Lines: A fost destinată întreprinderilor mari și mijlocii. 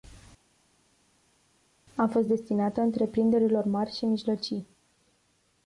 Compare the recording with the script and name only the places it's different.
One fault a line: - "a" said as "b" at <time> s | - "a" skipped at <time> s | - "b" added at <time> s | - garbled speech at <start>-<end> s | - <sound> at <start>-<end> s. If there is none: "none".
none